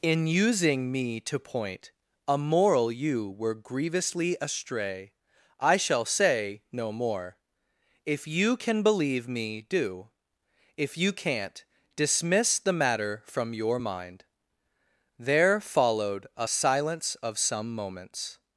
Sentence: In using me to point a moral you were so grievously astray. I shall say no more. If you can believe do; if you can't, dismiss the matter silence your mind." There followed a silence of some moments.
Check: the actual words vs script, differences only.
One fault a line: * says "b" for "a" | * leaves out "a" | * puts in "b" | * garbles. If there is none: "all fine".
* leaves out "so"
* puts in "me"
* says "from" for "silence"